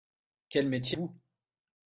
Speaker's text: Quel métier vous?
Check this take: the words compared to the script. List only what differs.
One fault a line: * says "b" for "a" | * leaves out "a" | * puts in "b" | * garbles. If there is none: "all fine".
all fine